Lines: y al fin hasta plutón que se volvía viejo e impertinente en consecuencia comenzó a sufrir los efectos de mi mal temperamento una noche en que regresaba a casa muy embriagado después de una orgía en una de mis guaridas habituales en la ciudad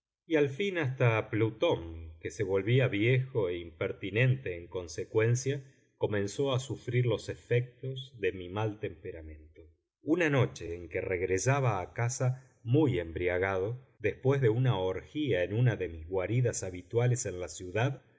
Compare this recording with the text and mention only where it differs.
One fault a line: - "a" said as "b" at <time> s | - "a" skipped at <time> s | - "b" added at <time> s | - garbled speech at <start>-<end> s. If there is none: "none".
none